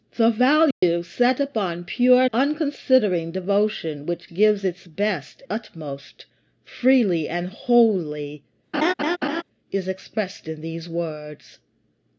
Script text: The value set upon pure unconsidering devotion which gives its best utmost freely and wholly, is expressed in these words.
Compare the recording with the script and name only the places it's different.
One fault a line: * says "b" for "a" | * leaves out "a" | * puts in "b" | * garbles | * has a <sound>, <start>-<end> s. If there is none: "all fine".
* has a dropout, 0.7-0.8 s
* has a laugh, 8.7-9.4 s